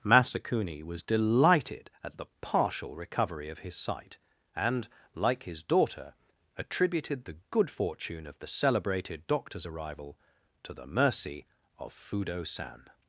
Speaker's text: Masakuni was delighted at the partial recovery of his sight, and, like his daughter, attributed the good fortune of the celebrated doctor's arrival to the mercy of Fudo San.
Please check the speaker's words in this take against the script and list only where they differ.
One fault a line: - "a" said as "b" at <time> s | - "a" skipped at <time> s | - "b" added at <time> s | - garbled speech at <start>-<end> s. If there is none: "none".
none